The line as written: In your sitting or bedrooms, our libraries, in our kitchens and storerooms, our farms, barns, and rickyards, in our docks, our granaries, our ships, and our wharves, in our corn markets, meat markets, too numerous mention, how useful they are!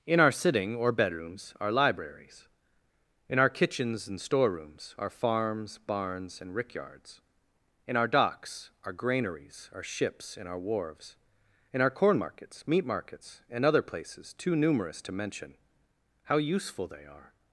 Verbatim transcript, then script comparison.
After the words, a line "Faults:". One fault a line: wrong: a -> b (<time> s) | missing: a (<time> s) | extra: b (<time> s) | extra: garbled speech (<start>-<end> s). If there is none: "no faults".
In our sitting or bedrooms, our libraries, in our kitchens and storerooms, our farms, barns, and rickyards, in our docks, our granaries, our ships, and our wharves, in our corn markets, meat markets, and other places too numerous to mention, how useful they are!
Faults:
wrong: your -> our (0.2 s)
extra: and other places (13.5 s)
extra: to (15.0 s)